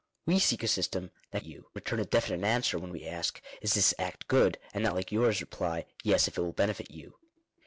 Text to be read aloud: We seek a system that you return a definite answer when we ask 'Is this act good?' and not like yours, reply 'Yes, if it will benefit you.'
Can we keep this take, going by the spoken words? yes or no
yes